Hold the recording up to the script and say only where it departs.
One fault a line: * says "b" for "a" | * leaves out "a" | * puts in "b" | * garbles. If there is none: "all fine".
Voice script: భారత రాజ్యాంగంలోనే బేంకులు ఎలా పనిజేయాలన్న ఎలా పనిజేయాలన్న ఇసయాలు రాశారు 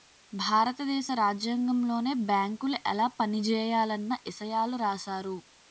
* puts in "దేశ"
* leaves out "ఎలా పనిజేయాలన్న"